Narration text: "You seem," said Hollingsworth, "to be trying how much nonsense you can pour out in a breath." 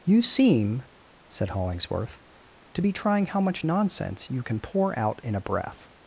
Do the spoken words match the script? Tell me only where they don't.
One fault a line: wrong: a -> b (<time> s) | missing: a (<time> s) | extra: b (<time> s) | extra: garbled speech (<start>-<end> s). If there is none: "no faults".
no faults